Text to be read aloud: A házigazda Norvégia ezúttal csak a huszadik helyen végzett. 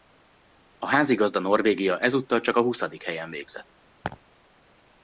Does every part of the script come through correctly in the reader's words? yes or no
yes